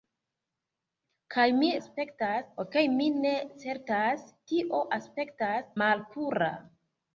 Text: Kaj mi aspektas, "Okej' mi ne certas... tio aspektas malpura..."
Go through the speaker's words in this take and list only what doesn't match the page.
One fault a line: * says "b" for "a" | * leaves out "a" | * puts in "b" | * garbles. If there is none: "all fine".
all fine